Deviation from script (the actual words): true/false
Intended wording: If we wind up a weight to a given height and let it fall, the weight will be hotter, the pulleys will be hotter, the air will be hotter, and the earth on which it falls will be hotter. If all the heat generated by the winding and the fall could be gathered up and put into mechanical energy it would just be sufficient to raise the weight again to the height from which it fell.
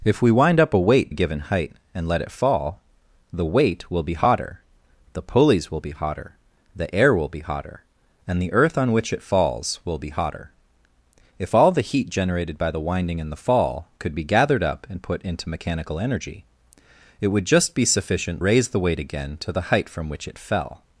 true